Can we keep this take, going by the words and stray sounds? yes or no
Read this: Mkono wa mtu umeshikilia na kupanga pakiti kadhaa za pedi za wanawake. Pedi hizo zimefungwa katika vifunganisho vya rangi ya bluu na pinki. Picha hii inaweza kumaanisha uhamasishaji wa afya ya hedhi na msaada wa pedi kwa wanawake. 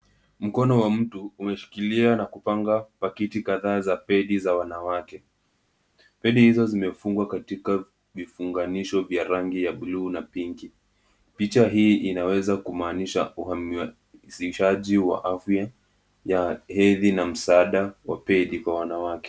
yes